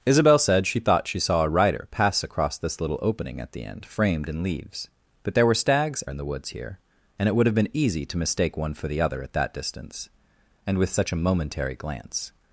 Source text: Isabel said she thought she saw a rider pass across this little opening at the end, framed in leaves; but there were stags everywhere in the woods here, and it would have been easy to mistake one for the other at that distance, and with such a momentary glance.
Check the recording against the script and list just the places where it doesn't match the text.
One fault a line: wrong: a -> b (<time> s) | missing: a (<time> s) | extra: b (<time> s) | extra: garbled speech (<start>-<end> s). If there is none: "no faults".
missing: everywhere (6.0 s)